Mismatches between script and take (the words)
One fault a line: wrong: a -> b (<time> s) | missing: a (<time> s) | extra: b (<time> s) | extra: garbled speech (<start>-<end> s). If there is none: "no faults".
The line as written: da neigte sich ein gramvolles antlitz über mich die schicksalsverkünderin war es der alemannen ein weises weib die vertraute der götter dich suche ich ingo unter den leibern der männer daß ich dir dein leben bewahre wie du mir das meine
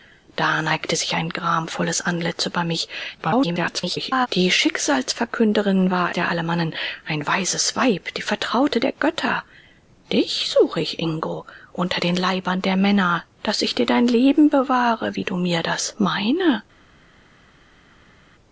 extra: garbled speech (3.2-4.3 s)
missing: es (6.1 s)